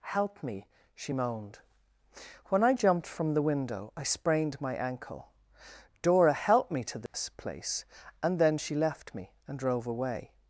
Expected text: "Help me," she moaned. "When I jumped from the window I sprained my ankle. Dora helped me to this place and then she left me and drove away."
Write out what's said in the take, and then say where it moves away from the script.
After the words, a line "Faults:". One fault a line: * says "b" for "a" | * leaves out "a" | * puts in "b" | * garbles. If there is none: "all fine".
"Help me," she moaned. "When I jumped from the window I sprained my ankle. Dora helped me to this place and then she left me and drove away."
Faults:
all fine